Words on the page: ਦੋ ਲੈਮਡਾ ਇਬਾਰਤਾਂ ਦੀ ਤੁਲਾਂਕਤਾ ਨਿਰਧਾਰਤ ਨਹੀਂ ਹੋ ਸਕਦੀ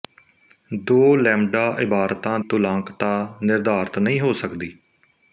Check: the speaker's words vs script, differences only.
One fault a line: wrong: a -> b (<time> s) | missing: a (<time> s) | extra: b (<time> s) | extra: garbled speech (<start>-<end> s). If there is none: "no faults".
missing: ਦੀ (2.4 s)